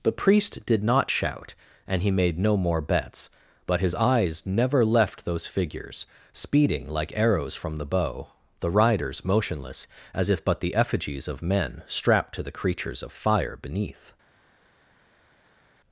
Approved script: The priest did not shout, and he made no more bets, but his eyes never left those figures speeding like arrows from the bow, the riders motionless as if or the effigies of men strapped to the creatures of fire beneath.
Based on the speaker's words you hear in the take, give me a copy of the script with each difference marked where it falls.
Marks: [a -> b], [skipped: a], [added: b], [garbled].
The priest did not shout, and he made no more bets, but his eyes never left those figures speeding like arrows from the bow, the riders motionless as if [or -> but] the effigies of men strapped to the creatures of fire beneath.